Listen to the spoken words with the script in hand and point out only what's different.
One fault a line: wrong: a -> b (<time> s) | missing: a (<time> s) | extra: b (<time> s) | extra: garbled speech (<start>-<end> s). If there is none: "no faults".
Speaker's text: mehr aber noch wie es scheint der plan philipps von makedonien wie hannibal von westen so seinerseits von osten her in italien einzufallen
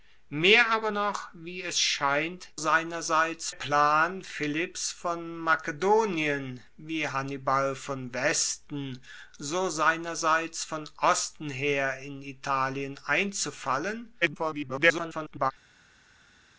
wrong: der -> seinerseits (2.5 s)
extra: garbled speech (14.2-15.5 s)